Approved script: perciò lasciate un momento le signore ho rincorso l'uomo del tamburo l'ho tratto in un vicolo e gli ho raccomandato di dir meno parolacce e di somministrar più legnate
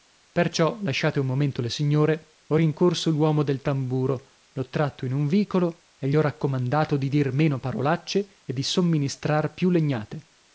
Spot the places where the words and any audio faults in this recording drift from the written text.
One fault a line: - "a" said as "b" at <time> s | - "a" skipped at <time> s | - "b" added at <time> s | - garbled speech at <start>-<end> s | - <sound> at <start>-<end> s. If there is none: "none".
none